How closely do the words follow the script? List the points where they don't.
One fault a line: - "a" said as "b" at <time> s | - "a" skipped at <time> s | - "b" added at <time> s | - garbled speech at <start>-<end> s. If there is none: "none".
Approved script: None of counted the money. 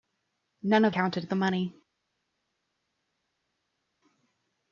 none